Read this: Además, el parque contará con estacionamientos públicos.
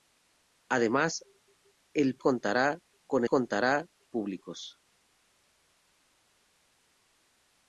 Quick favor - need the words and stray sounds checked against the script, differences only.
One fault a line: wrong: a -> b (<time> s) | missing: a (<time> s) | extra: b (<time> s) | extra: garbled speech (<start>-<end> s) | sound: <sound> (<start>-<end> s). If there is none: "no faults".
missing: parque (2.2 s)
wrong: estacionamientos -> contará (3.3 s)